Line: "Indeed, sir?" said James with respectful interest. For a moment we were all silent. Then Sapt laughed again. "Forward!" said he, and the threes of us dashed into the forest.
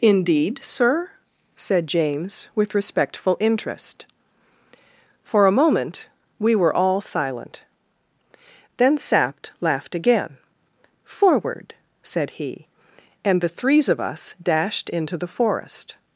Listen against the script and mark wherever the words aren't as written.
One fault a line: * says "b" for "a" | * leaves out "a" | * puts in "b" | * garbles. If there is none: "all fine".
all fine